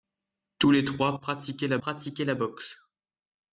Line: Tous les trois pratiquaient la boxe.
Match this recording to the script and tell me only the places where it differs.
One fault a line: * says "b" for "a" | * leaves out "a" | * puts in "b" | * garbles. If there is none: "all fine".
* puts in "pratiquaient la"